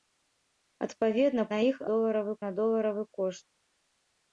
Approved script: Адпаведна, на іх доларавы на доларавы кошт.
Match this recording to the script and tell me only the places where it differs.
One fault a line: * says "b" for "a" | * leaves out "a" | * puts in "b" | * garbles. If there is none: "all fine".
all fine